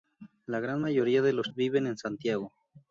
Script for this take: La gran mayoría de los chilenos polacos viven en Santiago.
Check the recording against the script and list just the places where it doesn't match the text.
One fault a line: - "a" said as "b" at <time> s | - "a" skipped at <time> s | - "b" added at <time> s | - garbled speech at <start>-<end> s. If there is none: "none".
- "chilenos polacos" skipped at 1.5 s